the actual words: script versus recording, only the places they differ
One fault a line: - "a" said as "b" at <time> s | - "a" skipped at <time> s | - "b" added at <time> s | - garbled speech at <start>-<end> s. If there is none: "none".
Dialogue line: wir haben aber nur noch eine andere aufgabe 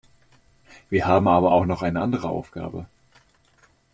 - "nur" said as "auch" at 1.5 s